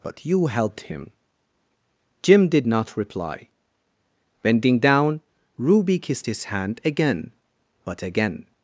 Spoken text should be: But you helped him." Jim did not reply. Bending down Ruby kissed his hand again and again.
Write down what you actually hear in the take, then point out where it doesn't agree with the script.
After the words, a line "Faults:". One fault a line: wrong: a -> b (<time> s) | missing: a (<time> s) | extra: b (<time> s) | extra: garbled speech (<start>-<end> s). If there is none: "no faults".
But you helped him." Jim did not reply. Bending down Ruby kissed his hand again but again.
Faults:
wrong: and -> but (7.8 s)